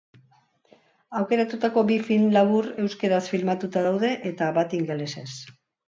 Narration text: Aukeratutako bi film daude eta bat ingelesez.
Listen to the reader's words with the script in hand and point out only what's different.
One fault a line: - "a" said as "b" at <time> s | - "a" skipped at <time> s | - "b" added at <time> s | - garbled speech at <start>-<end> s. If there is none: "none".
- "labur euskaraz filmatuta" added at 2.4 s